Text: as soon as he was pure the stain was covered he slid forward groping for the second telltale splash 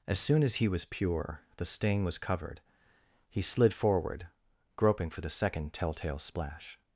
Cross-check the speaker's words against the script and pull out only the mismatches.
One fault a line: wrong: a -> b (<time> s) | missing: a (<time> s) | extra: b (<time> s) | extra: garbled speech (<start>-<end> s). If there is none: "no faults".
no faults